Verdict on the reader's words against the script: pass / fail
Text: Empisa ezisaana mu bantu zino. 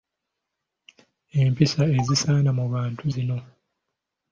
pass